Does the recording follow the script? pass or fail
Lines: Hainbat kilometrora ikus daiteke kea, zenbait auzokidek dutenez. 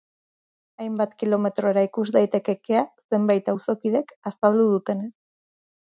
fail